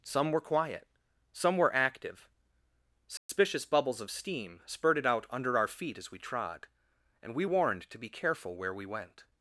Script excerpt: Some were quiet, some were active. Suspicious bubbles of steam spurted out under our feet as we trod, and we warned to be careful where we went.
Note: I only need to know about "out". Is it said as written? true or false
true